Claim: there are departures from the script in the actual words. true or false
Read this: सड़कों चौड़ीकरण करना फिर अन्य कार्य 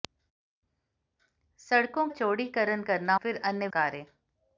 false